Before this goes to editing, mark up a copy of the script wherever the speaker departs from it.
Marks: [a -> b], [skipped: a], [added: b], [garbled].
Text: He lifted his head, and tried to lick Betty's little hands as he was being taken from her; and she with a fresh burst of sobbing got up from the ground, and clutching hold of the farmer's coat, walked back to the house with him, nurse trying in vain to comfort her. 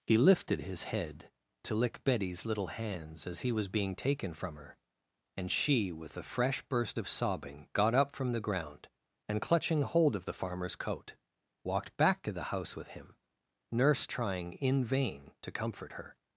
He lifted his head, [skipped: and tried] to lick Betty's little hands as he was being taken from her; and she with a fresh burst of sobbing got up from the ground, and clutching hold of the farmer's coat, walked back to the house with him, nurse trying in vain to comfort her.